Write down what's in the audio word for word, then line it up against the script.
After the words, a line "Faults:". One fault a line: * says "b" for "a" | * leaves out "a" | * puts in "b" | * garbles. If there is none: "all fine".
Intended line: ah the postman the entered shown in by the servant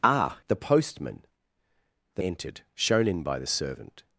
ah the postman the entered shown in by the servant
Faults:
all fine